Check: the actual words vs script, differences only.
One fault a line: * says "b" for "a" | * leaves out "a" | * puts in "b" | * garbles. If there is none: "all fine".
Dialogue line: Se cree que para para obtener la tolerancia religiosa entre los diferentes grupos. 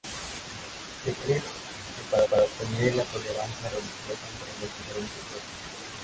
all fine